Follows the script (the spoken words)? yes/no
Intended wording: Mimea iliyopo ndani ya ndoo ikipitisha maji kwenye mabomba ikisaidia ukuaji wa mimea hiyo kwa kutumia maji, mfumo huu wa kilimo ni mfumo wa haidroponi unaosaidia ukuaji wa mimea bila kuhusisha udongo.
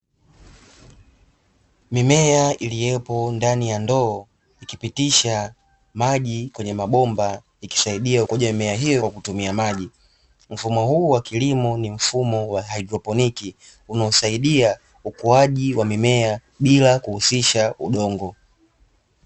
yes